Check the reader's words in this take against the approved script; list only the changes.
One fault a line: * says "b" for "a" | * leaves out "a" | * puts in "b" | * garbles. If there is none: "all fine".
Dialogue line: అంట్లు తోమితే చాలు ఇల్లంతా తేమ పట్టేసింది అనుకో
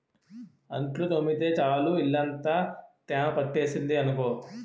all fine